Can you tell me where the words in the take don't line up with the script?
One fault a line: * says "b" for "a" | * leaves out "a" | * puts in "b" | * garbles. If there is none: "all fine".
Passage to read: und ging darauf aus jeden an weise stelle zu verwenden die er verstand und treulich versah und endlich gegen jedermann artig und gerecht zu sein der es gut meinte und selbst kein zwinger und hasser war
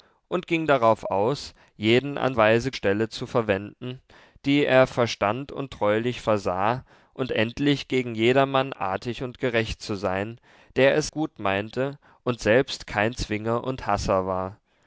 all fine